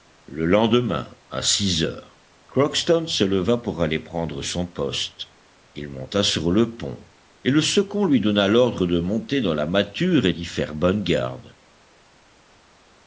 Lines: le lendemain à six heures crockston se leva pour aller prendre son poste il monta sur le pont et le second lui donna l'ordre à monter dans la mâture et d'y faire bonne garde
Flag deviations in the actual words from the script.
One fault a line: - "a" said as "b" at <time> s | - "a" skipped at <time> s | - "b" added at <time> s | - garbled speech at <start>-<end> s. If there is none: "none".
- "à" said as "de" at 8.9 s